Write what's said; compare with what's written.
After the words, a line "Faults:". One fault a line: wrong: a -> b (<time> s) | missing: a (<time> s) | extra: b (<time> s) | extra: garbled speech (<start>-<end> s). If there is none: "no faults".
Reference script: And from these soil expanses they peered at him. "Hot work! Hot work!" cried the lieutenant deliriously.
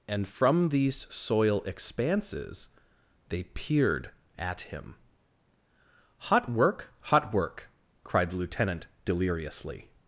And from these soil expanses they peered at him. "Hot work! Hot work!" cried the lieutenant deliriously.
Faults:
no faults